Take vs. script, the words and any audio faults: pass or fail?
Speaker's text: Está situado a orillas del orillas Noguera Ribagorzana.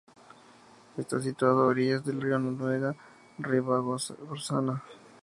fail